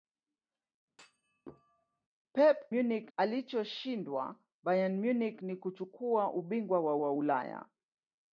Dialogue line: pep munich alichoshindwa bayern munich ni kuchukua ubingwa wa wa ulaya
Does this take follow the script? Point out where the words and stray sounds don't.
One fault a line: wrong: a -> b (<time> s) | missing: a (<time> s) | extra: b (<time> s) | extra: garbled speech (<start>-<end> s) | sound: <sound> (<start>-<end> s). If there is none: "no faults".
sound: thud (0.9-2.1 s)